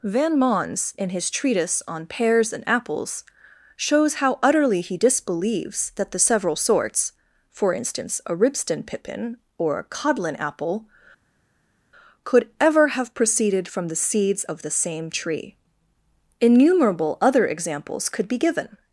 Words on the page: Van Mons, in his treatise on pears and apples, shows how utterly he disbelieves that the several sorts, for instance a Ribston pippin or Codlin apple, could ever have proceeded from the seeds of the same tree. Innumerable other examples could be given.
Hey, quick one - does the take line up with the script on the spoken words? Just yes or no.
no